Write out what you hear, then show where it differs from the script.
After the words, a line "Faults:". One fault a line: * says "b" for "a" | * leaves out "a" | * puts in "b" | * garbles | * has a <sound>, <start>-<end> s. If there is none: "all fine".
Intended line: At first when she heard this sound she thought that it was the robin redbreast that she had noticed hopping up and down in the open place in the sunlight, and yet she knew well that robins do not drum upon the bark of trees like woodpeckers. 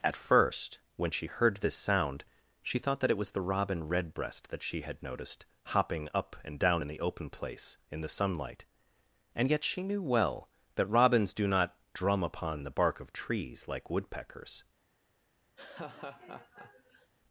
At first when she heard this sound she thought that it was the robin redbreast that she had noticed hopping up and down in the open place in the sunlight, and yet she knew well that robins do not drum upon the bark of trees like woodpeckers.
Faults:
* has a laugh, 15.6-17.1 s